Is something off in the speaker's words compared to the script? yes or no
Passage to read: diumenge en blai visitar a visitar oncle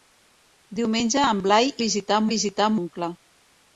no